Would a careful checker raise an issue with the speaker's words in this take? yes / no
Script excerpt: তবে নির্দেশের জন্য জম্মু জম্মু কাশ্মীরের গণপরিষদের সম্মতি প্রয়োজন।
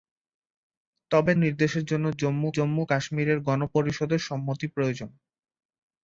no